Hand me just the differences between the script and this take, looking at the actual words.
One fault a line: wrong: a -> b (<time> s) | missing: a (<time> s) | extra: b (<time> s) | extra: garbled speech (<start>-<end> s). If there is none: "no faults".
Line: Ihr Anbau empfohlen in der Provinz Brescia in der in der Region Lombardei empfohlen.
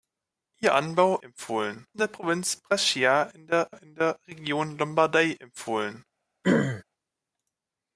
no faults